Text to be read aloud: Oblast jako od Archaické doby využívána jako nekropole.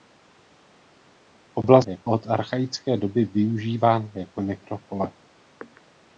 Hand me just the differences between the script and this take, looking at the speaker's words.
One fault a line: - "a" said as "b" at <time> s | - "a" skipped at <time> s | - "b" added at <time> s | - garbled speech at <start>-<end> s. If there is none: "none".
none